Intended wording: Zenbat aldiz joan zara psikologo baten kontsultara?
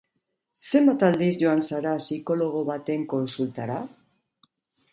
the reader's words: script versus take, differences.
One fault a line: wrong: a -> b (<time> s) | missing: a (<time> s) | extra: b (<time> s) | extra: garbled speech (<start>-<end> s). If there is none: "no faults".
no faults